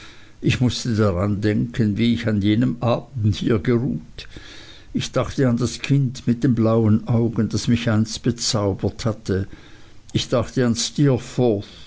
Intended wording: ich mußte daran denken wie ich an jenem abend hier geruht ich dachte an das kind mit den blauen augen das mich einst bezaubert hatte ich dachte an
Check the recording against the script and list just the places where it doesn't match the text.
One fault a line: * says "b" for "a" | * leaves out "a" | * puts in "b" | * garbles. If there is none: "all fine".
all fine